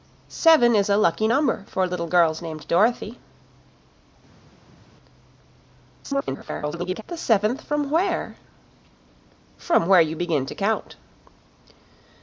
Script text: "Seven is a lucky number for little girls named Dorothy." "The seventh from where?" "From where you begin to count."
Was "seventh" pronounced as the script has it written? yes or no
yes